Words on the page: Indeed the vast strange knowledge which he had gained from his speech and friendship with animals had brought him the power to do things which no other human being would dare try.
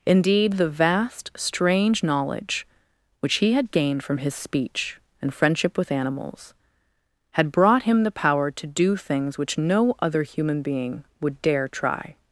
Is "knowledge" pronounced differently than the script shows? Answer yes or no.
no